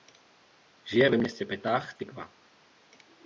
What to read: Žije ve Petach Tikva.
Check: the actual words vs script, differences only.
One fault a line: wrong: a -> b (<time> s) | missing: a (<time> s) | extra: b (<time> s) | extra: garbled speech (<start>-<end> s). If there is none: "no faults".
extra: městě (1.2 s)